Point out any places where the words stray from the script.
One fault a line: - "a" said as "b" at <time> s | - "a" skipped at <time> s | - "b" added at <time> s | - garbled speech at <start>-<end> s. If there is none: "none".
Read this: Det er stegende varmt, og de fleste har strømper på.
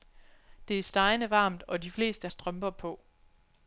- "har" skipped at 2.3 s